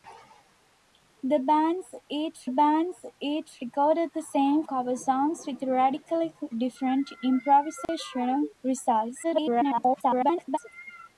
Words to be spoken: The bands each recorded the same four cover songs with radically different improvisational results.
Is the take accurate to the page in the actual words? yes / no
no